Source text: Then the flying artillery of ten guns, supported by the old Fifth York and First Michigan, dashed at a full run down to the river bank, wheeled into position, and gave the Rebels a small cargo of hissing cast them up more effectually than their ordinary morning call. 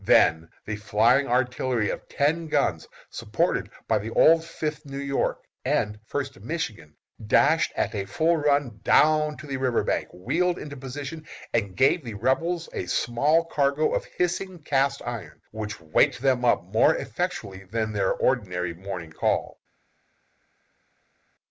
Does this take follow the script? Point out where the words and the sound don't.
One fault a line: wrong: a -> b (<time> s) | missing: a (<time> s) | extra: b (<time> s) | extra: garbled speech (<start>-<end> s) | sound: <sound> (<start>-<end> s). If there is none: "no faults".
extra: New (4.8 s)
extra: iron which waked (15.0 s)